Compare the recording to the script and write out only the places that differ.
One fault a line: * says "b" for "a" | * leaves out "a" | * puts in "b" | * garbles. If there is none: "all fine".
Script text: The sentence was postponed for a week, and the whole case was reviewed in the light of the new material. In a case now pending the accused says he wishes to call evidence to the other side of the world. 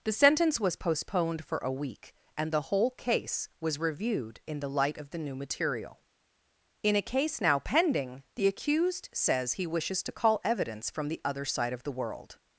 * says "from" for "to"